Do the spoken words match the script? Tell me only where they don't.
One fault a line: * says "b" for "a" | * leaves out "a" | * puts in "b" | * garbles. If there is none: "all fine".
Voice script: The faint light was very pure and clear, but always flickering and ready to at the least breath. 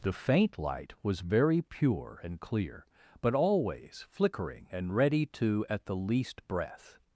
all fine